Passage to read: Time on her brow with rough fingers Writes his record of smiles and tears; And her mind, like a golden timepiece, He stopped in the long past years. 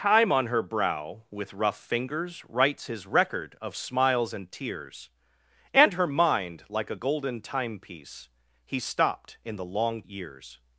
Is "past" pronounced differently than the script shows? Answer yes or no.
yes